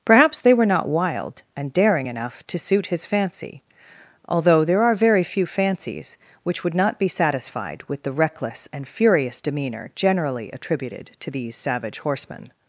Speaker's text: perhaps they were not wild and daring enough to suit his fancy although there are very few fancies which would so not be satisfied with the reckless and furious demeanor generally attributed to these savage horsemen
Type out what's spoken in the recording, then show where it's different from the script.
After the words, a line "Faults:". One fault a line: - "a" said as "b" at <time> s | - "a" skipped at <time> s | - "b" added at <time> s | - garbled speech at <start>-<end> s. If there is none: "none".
perhaps they were not wild and daring enough to suit his fancy although there are very few fancies which would not be satisfied with the reckless and furious demeanor generally attributed to these savage horsemen
Faults:
- "so" skipped at 6.7 s